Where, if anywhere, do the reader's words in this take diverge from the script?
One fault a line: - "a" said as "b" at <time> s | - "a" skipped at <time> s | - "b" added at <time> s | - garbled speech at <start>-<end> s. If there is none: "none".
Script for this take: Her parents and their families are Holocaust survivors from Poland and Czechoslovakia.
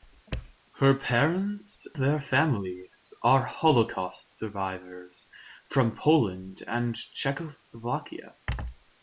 - "and" skipped at 1.9 s